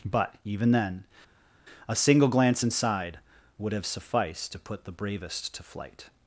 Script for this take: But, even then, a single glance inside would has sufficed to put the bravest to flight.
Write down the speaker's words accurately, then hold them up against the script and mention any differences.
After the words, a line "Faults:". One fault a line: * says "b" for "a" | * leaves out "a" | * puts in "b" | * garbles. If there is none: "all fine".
But, even then, a single glance inside would have sufficed to put the bravest to flight.
Faults:
* says "have" for "has"